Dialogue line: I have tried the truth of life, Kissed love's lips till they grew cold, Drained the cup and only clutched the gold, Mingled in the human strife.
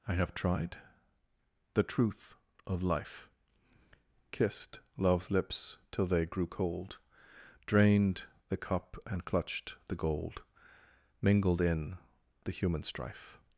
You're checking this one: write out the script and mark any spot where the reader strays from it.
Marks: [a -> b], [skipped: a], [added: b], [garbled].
I have tried the truth of life, Kissed love's lips till they grew cold, Drained the cup and [skipped: only] clutched the gold, Mingled in the human strife.